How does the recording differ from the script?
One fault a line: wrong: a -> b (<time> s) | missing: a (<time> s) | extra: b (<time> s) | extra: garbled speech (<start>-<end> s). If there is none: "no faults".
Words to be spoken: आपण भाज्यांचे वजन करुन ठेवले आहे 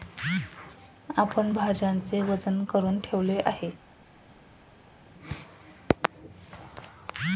no faults